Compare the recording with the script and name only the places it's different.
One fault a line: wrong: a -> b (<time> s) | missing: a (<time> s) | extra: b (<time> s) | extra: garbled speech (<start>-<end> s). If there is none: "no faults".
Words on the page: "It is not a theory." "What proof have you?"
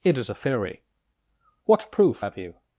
missing: not (0.3 s)